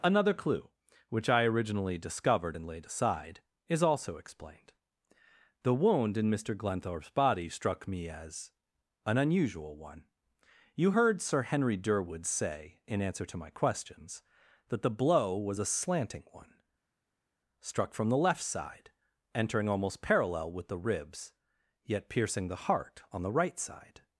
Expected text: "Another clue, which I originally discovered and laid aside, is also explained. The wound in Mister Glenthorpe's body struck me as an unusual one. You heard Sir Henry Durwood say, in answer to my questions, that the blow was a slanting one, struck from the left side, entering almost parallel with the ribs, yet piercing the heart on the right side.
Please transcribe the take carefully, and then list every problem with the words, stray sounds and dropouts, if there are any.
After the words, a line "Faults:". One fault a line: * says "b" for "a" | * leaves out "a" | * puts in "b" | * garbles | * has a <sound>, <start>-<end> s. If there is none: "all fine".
"Another clue, which I originally discovered and laid aside, is also explained. The wound in Mister Glenthorpe's body struck me as an unusual one. You heard Sir Henry Durwood say, in answer to my questions, that the blow was a slanting one, struck from the left side, entering almost parallel with the ribs, yet piercing the heart on the right side.
Faults:
all fine